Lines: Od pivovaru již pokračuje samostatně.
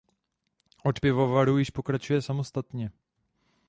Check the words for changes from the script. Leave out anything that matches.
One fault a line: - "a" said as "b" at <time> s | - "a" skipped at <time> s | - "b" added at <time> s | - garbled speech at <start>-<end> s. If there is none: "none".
none